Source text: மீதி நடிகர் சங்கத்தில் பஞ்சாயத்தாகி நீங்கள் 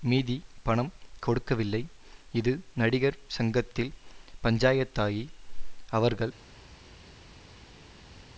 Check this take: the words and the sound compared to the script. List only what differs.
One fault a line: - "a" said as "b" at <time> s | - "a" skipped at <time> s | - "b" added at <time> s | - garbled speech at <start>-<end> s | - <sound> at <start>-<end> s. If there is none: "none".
- "பணம் கொடுக்கவில்லை இது" added at 0.6 s
- "நீங்கள்" said as "அவர்கள்" at 5.9 s